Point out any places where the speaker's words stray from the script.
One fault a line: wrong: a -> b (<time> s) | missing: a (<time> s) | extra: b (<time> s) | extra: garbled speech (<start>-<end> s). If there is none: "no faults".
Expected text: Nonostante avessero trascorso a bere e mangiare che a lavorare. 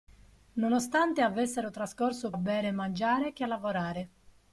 no faults